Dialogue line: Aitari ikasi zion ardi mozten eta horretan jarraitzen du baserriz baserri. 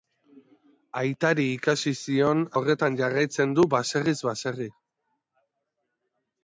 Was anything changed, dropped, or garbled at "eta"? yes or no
yes